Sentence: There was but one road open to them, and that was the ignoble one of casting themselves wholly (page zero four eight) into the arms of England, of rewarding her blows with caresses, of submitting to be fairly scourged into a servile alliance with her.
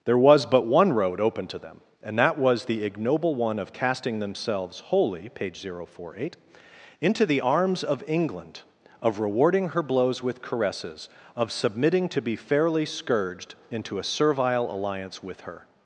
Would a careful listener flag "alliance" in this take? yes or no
no